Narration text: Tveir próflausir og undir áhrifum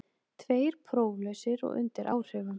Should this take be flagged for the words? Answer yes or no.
no